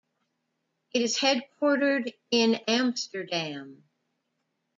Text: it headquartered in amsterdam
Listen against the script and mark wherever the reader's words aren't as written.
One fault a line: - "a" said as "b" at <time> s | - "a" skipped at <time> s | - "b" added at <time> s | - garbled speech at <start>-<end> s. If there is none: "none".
- "is" added at 1.0 s